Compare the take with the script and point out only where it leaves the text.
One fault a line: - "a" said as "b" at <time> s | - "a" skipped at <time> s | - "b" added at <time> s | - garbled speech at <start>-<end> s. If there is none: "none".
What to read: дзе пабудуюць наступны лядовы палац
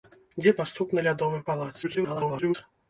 - "пабудуюць" skipped at 0.5 s
- garbled speech at 1.8-2.5 s